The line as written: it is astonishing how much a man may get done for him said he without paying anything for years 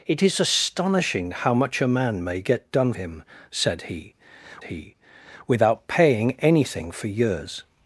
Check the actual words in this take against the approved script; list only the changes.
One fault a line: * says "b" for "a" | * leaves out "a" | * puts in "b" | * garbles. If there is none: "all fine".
* leaves out "for"
* puts in "he"